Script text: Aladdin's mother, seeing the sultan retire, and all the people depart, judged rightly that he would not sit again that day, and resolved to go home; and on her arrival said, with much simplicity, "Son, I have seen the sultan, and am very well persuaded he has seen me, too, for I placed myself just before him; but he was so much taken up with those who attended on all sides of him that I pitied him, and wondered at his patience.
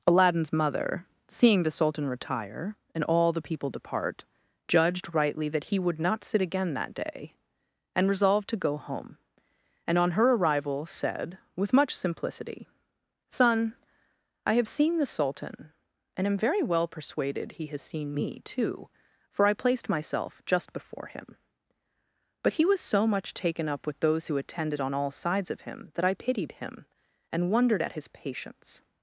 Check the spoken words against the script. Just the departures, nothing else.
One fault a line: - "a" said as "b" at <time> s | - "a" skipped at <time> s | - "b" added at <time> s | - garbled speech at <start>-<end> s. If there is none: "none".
none